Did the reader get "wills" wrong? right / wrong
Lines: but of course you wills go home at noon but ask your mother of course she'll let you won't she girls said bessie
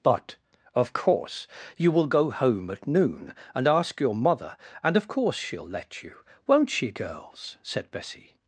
wrong